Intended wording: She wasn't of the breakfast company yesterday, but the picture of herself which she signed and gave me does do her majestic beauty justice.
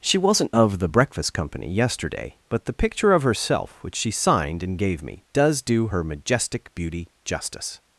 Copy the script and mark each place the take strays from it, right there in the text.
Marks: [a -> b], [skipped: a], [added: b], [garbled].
She wasn't of the breakfast company yesterday, but the picture of herself which she signed and gave me does do her majestic beauty justice.